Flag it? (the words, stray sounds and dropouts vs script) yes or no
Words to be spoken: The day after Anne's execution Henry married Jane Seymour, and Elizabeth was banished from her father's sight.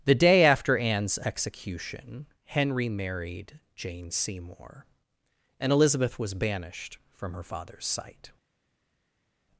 no